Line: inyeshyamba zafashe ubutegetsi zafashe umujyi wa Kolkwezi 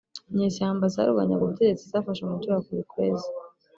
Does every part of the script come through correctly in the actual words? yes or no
no